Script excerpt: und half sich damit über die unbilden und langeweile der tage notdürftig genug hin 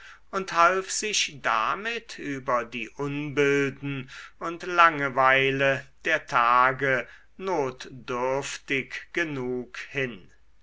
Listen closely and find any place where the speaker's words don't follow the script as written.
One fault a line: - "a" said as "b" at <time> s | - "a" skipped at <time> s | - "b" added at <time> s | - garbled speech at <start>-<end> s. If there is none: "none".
none